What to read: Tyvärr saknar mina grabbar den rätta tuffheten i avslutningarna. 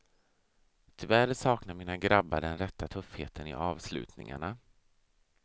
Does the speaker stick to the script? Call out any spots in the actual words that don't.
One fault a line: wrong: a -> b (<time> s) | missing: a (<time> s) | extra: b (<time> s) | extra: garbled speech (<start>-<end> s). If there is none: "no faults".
no faults